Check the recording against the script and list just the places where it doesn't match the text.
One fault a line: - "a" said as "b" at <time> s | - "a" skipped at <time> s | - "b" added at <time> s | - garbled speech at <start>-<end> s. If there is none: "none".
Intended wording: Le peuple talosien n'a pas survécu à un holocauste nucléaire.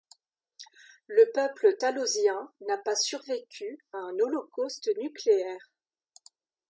none